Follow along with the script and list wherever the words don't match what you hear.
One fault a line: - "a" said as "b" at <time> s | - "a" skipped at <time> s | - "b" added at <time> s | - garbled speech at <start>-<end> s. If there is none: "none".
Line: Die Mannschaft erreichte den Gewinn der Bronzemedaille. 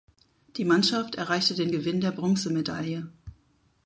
none